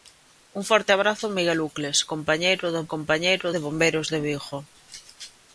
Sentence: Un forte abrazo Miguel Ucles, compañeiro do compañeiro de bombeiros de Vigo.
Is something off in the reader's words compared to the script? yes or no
no